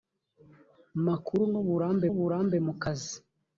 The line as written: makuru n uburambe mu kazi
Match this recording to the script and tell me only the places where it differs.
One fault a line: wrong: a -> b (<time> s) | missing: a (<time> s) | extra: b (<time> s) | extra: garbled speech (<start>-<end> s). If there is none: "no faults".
extra: uburambe (2.1 s)